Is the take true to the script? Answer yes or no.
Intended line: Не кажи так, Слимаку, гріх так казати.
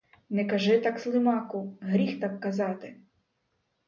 yes